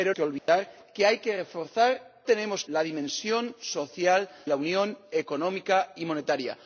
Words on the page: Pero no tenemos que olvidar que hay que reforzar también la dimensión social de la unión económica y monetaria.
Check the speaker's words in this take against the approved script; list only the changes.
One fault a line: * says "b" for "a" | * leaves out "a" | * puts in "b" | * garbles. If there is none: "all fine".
* leaves out "no tenemos"
* says "tenemos" for "también"
* leaves out "de"